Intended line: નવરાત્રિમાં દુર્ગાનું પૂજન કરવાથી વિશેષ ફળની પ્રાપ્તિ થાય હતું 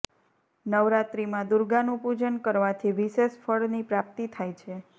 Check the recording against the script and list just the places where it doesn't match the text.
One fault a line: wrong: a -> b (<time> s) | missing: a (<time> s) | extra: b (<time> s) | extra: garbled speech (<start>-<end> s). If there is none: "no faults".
wrong: હતું -> છે (4.6 s)